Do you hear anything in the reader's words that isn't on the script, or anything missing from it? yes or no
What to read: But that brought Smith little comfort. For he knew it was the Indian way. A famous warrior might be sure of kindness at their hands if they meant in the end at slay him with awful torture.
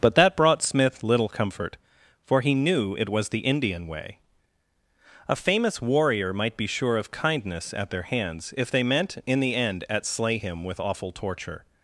no